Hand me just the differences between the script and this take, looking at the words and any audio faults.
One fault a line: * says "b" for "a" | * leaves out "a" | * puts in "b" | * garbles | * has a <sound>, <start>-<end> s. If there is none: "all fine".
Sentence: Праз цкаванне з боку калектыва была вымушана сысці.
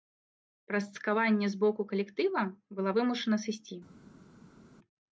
all fine